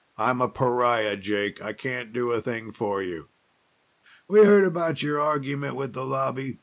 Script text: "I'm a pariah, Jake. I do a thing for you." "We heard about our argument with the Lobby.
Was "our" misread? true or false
true